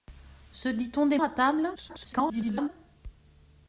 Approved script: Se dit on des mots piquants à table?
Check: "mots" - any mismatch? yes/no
yes